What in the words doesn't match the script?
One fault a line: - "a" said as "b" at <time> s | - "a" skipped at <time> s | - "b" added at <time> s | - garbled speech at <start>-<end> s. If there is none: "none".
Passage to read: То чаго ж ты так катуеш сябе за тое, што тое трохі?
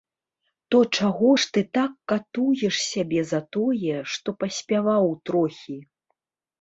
- "тое" said as "паспяваў" at 4.4 s